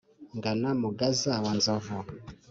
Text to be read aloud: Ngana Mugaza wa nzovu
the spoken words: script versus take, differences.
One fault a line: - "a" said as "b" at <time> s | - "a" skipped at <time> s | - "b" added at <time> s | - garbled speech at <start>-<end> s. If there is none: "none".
none